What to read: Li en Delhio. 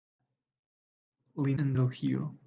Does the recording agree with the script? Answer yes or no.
yes